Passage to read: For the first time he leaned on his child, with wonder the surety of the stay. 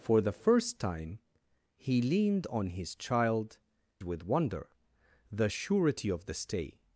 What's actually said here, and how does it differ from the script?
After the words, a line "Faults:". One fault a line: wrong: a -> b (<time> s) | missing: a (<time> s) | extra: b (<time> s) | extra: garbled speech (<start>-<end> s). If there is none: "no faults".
For the first time he leaned on his child, with wonder the surety of the stay.
Faults:
no faults